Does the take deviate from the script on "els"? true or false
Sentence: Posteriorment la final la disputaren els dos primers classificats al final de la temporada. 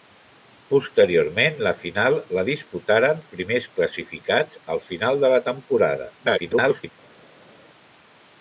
true